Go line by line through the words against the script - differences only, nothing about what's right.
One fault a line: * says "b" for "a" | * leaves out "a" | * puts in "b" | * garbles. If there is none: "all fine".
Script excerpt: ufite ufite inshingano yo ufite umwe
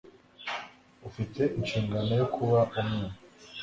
* leaves out "ufite"
* says "kuba" for "ufite"